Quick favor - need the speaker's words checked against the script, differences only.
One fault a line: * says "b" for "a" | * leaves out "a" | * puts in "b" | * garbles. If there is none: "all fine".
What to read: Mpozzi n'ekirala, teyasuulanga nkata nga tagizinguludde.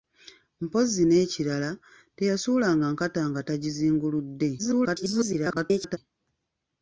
* garbles